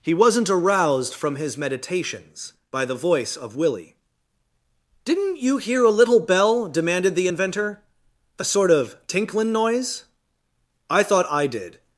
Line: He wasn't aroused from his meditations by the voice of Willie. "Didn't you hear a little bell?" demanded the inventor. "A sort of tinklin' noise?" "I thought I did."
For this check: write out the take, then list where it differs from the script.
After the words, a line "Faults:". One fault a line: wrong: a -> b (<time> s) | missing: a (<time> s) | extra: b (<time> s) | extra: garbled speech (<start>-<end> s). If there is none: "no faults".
He wasn't aroused from his meditations by the voice of Willie. "Didn't you hear a little bell?" demanded the inventor. "A sort of tinklin' noise?" "I thought I did."
Faults:
no faults